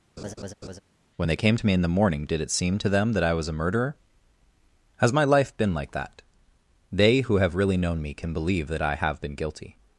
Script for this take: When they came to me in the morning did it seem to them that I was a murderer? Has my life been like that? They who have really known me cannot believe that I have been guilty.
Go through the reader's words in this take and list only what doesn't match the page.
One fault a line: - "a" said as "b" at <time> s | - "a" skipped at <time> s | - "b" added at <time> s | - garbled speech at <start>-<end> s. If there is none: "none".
- "cannot" said as "can" at 8.1 s